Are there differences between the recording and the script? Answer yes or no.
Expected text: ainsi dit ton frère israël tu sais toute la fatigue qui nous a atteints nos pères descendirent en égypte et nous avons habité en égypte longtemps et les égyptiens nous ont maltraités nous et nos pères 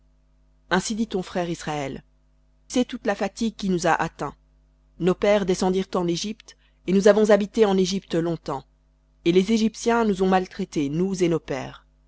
yes